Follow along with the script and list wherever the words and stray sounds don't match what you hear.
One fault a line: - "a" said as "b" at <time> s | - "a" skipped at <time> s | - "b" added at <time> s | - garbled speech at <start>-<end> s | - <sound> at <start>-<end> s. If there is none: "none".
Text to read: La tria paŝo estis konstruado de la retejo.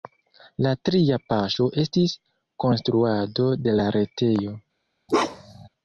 - bark at 5.1-5.7 s